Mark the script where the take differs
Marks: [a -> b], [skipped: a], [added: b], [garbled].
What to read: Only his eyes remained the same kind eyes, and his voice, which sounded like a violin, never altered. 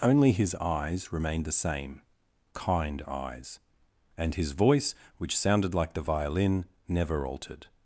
Only his eyes remained the same kind eyes, and his voice, which sounded like [a -> the] violin, never altered.